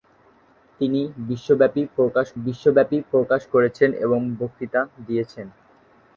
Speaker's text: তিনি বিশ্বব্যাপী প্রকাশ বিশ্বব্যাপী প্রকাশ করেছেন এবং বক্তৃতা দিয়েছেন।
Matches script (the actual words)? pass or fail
pass